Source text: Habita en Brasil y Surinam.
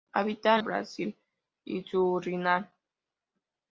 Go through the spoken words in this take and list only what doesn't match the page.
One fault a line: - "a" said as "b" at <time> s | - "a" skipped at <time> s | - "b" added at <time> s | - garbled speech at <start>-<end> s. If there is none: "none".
none